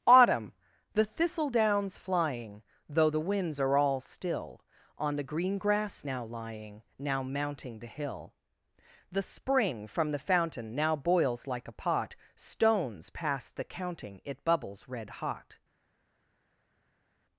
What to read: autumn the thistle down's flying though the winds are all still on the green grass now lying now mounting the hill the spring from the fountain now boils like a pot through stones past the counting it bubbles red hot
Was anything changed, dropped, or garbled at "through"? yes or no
yes